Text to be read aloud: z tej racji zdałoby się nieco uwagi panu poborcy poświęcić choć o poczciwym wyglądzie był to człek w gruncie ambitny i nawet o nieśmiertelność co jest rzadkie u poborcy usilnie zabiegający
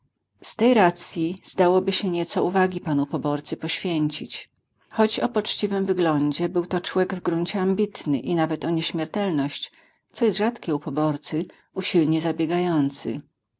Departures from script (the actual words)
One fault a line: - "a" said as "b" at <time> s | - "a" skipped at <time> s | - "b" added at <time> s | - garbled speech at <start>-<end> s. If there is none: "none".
none